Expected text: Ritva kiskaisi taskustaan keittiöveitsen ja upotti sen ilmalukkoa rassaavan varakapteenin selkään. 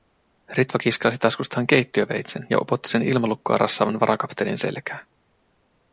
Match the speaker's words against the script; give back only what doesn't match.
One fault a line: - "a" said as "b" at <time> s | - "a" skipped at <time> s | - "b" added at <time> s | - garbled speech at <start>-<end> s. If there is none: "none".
none